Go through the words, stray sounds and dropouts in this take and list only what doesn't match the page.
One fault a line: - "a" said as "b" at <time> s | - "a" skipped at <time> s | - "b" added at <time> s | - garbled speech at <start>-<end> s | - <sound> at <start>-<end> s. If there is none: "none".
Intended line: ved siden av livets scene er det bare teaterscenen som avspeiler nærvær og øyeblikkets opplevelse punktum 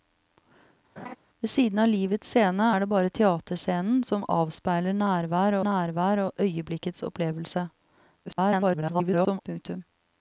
- laugh at 1.0-1.2 s
- "nærvær" added at 5.7 s
- garbled speech at 8.3-9.4 s